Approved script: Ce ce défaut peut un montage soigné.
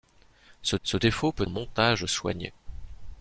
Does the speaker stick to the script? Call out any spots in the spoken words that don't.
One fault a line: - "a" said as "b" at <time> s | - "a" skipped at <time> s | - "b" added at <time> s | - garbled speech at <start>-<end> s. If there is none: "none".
none